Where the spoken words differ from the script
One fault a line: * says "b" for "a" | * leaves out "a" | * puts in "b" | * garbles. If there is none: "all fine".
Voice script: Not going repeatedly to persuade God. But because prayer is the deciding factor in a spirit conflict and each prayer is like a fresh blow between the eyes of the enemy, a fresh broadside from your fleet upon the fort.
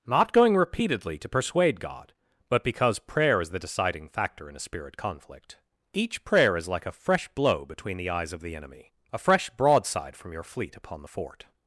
* leaves out "and"